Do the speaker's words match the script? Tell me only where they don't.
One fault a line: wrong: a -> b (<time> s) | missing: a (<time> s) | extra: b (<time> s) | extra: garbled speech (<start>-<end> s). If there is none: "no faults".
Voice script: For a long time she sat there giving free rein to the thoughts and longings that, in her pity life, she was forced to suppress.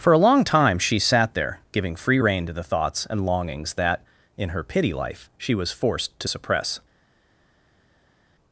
no faults